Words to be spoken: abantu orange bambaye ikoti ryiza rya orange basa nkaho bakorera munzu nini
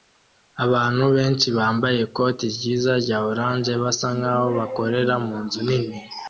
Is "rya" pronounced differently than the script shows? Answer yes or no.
no